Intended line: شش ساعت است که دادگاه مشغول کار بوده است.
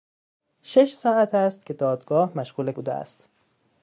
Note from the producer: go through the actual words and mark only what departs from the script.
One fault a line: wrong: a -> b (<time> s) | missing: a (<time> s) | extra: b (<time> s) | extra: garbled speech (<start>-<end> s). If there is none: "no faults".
missing: کار (2.7 s)